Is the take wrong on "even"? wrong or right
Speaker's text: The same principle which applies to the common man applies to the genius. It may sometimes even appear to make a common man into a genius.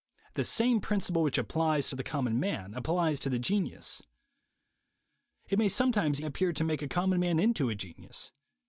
wrong